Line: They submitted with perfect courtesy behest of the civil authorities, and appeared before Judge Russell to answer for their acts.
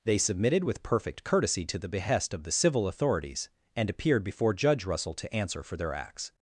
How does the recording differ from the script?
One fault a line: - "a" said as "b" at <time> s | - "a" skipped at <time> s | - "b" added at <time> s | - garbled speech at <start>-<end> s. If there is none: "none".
- "to the" added at 1.6 s